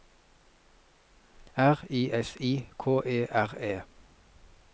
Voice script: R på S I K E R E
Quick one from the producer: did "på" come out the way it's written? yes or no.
no